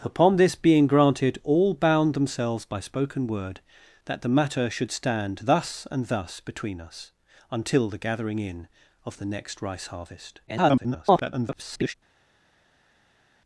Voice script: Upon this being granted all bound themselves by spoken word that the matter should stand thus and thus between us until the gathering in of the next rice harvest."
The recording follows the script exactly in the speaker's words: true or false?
false